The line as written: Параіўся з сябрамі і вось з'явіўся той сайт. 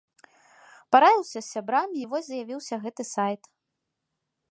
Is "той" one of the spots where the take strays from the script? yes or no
yes